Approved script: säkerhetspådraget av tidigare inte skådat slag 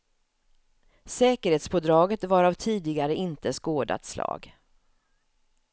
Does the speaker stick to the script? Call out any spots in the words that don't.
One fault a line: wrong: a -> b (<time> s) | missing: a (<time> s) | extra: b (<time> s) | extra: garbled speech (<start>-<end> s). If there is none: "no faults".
extra: var (2.2 s)